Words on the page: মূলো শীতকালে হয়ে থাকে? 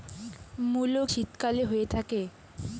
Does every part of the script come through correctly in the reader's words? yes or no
yes